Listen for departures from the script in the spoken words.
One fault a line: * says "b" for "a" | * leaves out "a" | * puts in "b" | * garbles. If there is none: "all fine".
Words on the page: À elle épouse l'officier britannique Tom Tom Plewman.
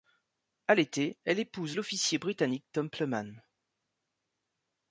* puts in "l'été"
* leaves out "Tom"